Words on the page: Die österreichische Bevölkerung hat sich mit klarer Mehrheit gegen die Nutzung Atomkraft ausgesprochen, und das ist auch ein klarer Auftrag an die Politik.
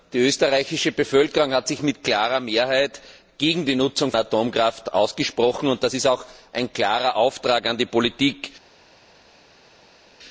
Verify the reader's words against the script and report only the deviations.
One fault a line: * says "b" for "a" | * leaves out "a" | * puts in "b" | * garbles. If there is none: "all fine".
all fine